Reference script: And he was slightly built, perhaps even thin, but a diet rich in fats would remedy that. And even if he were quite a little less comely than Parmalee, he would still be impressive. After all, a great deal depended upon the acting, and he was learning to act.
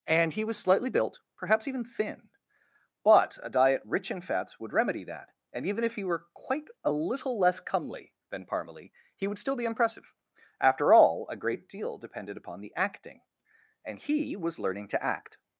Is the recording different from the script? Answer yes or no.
no